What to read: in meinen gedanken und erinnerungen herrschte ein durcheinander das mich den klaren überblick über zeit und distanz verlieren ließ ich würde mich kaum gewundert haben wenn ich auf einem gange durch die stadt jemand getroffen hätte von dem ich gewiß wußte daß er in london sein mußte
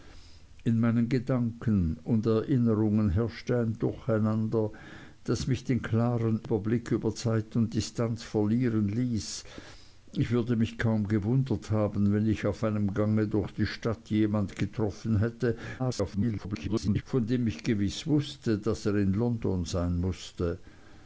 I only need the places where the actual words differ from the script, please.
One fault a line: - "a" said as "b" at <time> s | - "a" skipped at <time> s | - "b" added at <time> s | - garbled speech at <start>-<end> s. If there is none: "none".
- garbled speech at 15.8-17.0 s